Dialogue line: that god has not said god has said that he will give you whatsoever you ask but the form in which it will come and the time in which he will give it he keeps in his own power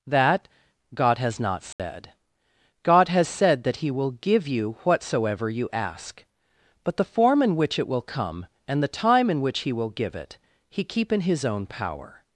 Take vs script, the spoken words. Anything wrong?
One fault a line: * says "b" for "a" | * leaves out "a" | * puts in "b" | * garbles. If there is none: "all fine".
* says "keep" for "keeps"